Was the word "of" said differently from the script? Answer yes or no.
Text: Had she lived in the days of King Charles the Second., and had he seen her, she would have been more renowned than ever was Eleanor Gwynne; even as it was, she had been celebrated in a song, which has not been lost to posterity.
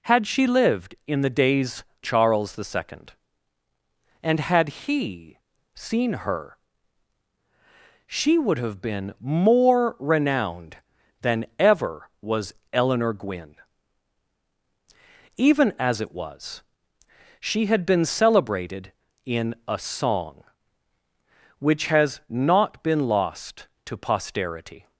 yes